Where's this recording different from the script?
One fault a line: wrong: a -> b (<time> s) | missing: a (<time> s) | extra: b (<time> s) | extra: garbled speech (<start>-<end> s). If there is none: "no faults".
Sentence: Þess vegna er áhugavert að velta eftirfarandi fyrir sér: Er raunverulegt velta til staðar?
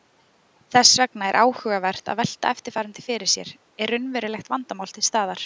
wrong: velta -> vandamál (4.6 s)